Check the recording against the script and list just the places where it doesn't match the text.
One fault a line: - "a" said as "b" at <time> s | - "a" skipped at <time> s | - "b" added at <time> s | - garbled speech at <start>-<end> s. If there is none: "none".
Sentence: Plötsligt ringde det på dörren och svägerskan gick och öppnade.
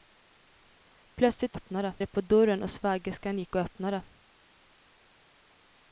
- "ringde" said as "öppnade" at 1.5 s